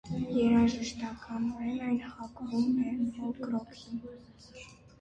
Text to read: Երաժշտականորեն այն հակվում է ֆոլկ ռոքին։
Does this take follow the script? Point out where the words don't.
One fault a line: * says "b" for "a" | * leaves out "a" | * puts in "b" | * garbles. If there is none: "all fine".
all fine